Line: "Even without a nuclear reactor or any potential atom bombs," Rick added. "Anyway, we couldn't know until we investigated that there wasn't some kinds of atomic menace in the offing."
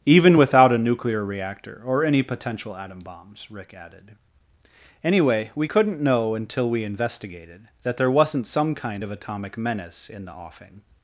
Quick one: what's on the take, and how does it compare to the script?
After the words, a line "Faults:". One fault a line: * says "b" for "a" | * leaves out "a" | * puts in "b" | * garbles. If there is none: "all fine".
"Even without a nuclear reactor or any potential atom bombs," Rick added. "Anyway, we couldn't know until we investigated that there wasn't some kind of atomic menace in the offing."
Faults:
* says "kind" for "kinds"